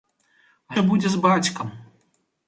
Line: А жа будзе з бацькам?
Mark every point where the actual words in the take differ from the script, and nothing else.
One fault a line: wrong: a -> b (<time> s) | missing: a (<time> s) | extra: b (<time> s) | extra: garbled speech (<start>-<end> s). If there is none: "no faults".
no faults